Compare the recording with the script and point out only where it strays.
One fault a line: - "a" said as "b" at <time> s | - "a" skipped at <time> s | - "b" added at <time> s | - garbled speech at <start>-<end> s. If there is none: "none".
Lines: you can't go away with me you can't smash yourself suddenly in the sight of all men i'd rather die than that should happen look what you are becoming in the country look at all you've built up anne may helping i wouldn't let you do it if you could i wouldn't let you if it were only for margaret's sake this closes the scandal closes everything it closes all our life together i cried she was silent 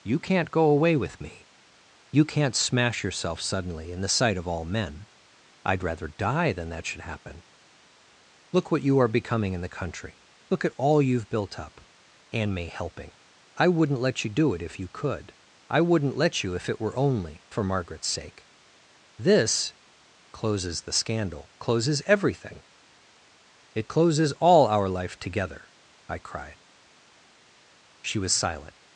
none